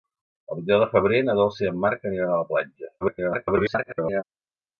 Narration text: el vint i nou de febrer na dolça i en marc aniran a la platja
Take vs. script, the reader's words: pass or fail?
fail